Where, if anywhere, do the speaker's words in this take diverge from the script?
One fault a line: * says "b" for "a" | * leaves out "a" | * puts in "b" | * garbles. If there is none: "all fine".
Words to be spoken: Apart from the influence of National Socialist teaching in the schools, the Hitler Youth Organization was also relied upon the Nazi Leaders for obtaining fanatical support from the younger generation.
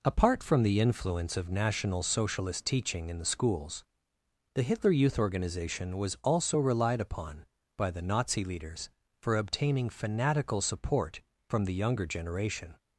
* puts in "by"